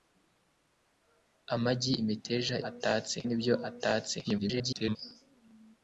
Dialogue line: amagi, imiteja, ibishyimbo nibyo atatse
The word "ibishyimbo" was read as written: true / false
false